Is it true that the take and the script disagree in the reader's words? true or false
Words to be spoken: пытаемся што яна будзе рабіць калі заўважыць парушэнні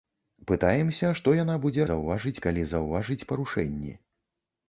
true